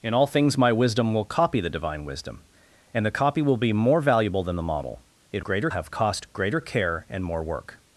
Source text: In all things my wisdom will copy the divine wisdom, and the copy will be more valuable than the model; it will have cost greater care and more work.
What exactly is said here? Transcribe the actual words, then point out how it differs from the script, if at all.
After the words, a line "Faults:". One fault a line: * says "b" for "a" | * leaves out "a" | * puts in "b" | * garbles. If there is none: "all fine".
In all things my wisdom will copy the divine wisdom, and the copy will be more valuable than the model; it greater have cost greater care and more work.
Faults:
* says "greater" for "will"